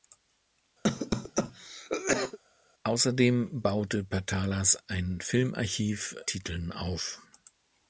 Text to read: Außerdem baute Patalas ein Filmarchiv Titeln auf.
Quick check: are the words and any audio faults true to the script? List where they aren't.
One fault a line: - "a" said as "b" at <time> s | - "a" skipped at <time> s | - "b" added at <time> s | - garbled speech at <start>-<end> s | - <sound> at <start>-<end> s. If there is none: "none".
- cough at 0.8-2.4 s